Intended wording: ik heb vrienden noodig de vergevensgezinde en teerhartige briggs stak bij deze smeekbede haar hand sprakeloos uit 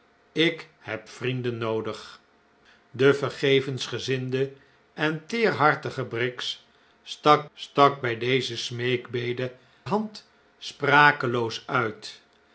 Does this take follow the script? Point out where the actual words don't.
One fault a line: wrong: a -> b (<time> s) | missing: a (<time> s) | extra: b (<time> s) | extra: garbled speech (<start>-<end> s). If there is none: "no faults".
extra: stak (7.5 s)
missing: haar (9.5 s)